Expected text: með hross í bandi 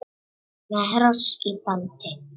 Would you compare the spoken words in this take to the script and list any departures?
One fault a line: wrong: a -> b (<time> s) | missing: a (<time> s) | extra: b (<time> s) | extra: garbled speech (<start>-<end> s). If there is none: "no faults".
no faults